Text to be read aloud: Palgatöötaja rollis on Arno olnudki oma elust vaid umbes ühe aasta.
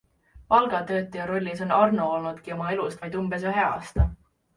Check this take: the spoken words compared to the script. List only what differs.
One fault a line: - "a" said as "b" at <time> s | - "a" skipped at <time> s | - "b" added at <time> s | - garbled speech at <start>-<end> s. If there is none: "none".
none